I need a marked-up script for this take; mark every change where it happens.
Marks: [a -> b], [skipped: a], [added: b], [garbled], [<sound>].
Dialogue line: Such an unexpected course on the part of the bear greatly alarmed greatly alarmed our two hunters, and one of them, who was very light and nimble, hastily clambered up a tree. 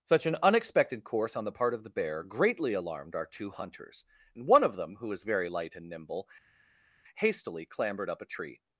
Such an unexpected course on the part of the bear greatly alarmed [skipped: greatly alarmed] our two hunters, and one of them, who was very light and nimble, hastily clambered up a tree.